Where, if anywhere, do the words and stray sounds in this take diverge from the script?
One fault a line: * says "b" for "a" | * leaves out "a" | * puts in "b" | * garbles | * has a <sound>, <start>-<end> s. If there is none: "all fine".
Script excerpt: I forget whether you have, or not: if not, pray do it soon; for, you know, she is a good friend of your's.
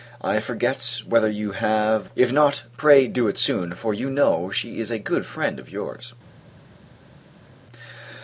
* leaves out "or not"